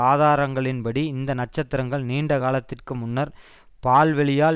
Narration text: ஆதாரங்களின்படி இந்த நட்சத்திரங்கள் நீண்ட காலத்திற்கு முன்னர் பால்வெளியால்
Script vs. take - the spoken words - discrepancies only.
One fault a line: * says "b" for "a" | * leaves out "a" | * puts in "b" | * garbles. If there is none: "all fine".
all fine